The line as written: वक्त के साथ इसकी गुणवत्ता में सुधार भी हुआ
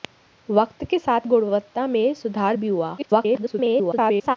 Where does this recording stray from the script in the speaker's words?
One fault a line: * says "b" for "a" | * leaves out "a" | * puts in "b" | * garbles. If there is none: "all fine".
* leaves out "इसकी"
* garbles